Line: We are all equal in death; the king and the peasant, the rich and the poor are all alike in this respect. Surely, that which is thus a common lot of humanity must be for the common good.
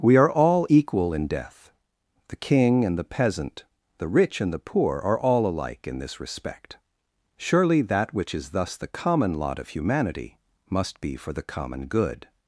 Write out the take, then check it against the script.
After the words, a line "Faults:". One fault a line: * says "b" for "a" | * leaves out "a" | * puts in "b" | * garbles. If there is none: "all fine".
We are all equal in death; the king and the peasant, the rich and the poor are all alike in this respect. Surely, that which is thus the common lot of humanity must be for the common good.
Faults:
* says "the" for "a"